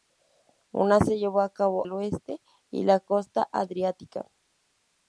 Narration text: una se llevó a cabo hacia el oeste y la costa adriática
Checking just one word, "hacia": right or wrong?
wrong